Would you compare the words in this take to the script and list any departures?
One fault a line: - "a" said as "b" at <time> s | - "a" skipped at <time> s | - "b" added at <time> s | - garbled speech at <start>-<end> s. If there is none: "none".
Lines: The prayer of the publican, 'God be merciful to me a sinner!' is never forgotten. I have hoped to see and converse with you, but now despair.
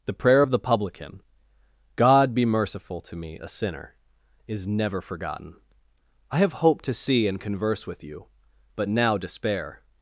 none